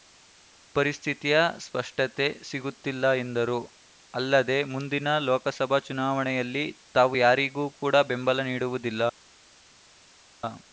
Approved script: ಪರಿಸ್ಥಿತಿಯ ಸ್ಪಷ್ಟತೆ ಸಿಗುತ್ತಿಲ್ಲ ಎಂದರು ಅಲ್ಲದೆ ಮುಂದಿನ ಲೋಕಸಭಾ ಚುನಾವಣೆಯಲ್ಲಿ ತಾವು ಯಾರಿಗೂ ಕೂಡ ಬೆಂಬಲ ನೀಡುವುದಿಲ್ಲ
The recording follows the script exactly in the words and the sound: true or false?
true